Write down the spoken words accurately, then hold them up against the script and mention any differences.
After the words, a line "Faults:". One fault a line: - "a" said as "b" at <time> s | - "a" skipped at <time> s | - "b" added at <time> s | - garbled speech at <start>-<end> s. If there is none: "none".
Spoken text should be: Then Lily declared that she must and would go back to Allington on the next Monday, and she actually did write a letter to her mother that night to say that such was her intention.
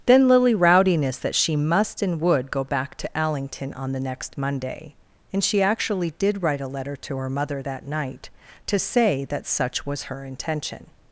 Then Lily rowdiness that she must and would go back to Allington on the next Monday, and she actually did write a letter to her mother that night to say that such was her intention.
Faults:
- "declared" said as "rowdiness" at 0.6 s